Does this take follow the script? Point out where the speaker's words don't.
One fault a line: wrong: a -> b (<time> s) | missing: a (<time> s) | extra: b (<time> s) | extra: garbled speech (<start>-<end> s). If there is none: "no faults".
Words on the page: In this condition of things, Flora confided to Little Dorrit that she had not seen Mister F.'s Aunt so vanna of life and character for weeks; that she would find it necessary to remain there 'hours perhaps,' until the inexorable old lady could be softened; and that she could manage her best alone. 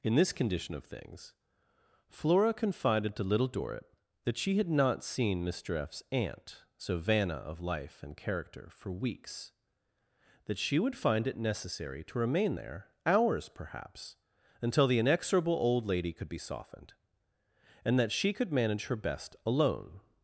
no faults